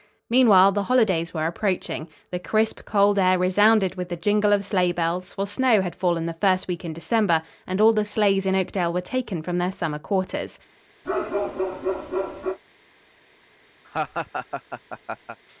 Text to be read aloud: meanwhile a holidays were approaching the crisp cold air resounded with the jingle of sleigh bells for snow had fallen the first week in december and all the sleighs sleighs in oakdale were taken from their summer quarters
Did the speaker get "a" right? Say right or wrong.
wrong